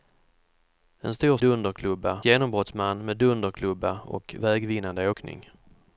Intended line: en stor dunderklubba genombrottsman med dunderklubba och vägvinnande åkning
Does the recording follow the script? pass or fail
pass